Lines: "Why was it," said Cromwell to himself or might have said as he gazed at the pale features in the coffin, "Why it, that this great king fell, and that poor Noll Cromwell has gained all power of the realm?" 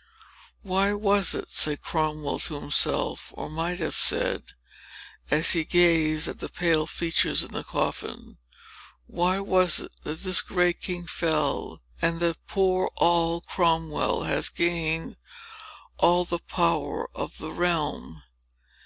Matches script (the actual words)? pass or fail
fail